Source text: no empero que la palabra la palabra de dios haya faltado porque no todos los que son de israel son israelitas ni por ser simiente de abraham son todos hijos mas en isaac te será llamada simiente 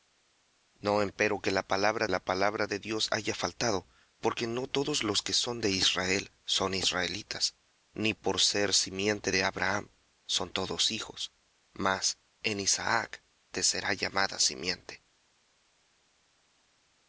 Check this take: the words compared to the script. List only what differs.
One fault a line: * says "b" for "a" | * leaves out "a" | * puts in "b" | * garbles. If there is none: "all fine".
all fine